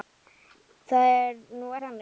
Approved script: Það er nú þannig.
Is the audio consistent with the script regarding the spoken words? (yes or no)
yes